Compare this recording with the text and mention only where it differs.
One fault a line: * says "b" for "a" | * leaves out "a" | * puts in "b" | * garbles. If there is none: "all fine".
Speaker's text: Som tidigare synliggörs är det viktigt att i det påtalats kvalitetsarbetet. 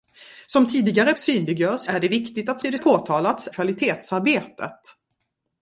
all fine